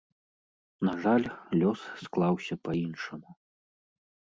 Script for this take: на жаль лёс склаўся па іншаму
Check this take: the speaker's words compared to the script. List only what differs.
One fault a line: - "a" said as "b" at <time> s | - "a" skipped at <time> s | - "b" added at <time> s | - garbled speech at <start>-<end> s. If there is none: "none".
none